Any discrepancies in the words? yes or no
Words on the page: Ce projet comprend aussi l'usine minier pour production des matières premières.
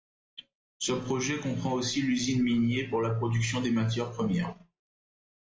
yes